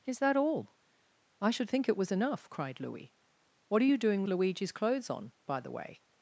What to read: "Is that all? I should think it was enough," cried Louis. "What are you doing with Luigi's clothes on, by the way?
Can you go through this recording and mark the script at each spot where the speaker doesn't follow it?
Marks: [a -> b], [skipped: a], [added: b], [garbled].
"Is that all? I should think it was enough," cried Louis. "What are you doing [skipped: with] Luigi's clothes on, by the way?